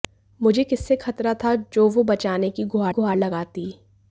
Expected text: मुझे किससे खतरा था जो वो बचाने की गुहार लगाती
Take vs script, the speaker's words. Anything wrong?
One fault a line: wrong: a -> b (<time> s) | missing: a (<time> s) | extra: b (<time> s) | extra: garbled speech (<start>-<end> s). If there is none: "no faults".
extra: गुहार (2.9 s)